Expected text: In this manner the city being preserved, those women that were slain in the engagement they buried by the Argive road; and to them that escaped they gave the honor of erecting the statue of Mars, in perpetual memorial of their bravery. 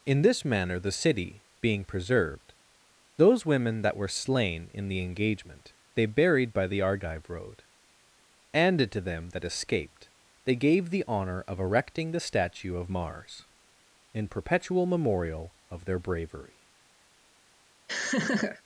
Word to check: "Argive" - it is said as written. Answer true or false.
true